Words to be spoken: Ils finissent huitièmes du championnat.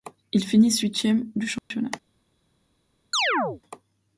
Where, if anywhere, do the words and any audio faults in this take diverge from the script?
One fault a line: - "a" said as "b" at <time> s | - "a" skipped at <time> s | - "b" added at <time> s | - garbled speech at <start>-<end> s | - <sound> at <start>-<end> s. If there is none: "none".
- dropout at 1.6-1.7 s
- chirp at 3.1-3.6 s